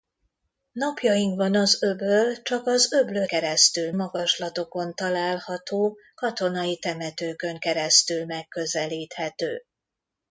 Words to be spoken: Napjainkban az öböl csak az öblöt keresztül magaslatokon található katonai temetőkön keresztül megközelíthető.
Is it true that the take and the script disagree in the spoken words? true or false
false